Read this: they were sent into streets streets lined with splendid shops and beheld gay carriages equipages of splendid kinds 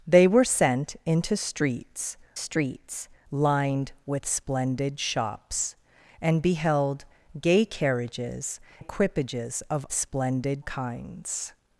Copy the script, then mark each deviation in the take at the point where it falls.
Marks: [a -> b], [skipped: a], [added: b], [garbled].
they were sent into streets streets lined with splendid shops and beheld gay carriages equipages of splendid kinds